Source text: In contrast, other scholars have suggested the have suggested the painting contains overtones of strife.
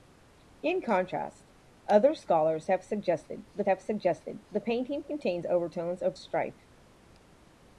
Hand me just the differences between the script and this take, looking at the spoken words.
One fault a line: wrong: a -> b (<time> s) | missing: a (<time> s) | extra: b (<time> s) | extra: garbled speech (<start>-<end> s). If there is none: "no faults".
no faults